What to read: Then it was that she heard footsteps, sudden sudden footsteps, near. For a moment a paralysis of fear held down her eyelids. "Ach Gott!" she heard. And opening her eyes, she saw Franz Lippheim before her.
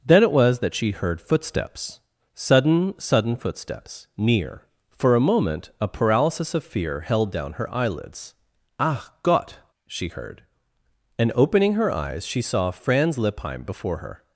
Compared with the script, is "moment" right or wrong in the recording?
right